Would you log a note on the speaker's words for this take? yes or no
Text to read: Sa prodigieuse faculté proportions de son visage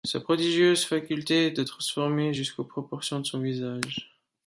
yes